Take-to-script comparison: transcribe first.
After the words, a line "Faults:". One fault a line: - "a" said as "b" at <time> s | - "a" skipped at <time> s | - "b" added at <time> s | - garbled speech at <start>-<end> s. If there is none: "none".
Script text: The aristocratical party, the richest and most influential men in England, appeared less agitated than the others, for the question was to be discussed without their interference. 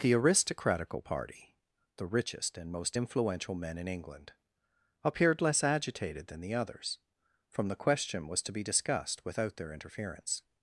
The aristocratical party, the richest and most influential men in England, appeared less agitated than the others, from the question was to be discussed without their interference.
Faults:
- "for" said as "from" at 7.5 s